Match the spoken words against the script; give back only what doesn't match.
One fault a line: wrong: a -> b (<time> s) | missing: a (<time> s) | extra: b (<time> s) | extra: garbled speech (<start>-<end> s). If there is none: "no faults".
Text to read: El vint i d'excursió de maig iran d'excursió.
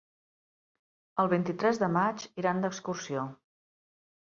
wrong: d'excursió -> tres (1.6 s)